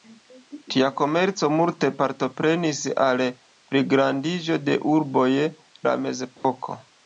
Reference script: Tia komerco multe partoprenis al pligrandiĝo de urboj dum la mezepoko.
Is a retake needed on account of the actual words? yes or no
yes